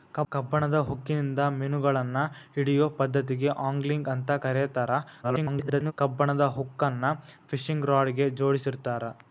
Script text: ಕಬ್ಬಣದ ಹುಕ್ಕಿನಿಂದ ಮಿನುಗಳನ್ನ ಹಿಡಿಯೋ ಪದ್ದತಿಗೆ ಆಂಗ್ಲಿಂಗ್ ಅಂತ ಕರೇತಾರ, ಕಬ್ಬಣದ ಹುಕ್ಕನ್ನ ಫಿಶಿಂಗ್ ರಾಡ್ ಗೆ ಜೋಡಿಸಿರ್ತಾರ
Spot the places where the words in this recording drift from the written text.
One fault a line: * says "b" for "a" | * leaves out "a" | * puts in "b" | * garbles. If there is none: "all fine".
* garbles